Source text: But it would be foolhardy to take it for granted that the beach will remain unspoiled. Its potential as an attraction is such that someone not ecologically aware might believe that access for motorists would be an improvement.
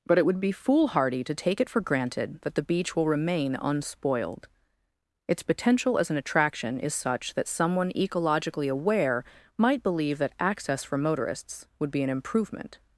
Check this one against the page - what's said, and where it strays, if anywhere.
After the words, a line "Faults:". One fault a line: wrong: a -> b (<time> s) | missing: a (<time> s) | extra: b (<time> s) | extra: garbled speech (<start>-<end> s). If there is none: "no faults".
But it would be foolhardy to take it for granted that the beach will remain unspoiled. Its potential as an attraction is such that someone ecologically aware might believe that access for motorists would be an improvement.
Faults:
missing: not (7.9 s)